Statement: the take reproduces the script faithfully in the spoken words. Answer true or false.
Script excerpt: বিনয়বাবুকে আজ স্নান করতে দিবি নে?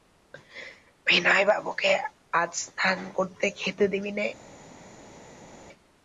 false